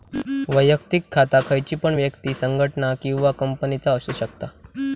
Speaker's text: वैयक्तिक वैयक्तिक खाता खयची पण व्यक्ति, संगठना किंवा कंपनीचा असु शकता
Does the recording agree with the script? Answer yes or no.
no